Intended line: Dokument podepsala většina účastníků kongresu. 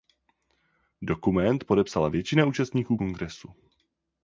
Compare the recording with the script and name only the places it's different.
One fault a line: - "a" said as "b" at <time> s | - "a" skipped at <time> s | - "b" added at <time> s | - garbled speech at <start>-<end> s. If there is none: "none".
none